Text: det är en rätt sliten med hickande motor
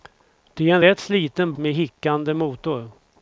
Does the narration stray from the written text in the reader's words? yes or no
no